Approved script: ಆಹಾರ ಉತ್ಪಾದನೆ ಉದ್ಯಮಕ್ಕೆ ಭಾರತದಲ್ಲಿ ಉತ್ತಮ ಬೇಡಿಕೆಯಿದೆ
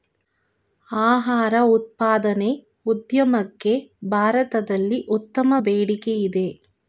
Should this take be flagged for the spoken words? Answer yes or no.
no